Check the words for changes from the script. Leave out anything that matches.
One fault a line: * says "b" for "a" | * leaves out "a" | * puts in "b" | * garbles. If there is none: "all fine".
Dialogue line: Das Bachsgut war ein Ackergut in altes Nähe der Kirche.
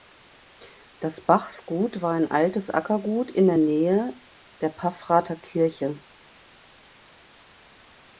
* puts in "altes"
* says "der" for "altes"
* puts in "Paffrather"